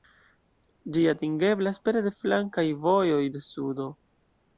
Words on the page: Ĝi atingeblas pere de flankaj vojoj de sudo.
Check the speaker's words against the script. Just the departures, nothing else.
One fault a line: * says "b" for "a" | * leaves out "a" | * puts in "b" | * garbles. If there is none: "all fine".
all fine